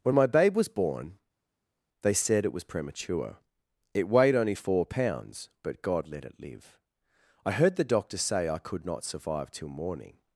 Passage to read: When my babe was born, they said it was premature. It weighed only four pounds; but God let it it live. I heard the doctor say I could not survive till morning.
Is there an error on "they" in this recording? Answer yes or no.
no